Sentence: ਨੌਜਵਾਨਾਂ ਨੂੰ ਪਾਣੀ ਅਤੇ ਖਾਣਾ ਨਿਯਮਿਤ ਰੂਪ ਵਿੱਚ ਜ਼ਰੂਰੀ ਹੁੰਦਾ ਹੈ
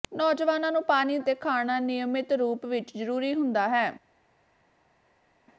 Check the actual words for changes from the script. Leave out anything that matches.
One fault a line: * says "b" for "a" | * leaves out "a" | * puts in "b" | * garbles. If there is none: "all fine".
all fine